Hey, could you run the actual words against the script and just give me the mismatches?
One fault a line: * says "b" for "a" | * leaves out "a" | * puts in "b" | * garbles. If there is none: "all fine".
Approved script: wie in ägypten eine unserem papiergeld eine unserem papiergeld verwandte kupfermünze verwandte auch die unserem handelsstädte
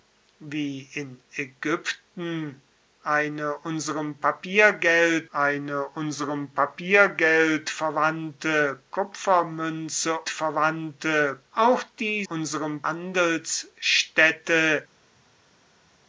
all fine